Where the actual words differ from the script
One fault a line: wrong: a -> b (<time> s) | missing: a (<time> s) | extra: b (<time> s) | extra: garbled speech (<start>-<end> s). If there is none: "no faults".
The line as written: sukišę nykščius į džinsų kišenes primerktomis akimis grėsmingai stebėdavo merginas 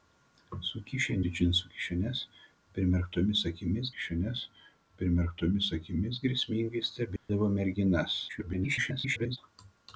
missing: nykščius (1.2 s)
extra: kišenes primerktomis akimis (3.9 s)
extra: garbled speech (8.3-9.4 s)